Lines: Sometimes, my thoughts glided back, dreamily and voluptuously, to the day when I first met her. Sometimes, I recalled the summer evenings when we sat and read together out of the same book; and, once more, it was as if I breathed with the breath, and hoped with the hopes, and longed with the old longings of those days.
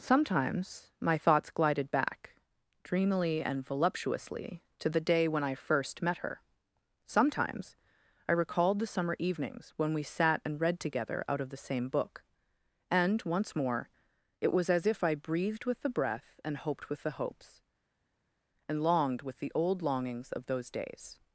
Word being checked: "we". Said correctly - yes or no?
yes